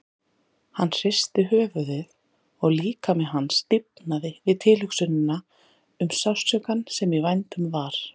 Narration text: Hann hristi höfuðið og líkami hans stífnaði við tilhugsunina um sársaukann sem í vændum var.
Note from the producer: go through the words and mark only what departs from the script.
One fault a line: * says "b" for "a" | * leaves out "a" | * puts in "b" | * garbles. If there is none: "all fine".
all fine